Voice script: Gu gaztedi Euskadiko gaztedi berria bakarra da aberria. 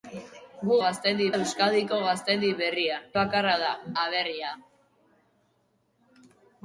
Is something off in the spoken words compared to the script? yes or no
no